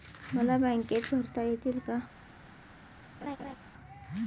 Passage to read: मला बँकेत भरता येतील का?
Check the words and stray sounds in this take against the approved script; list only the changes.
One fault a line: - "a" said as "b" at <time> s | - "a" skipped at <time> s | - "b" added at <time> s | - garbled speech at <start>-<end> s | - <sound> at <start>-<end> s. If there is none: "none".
- laugh at 3.2-3.5 s